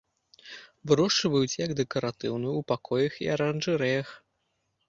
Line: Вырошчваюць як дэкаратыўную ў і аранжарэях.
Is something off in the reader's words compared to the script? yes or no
yes